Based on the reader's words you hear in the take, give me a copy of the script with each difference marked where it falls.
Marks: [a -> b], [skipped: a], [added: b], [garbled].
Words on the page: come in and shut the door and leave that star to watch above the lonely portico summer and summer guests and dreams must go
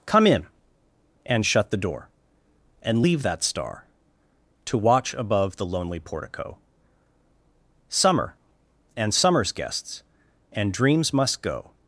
come in and shut the door and leave that star to watch above the lonely portico summer and [summer -> summers] guests and dreams must go